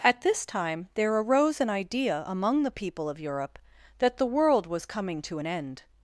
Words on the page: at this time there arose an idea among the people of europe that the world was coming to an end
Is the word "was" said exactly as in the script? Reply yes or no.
yes